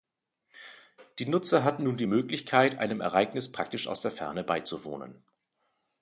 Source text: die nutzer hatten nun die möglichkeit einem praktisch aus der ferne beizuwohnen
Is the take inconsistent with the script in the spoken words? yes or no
yes